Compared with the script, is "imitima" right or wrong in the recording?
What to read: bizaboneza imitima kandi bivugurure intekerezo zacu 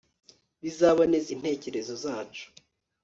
wrong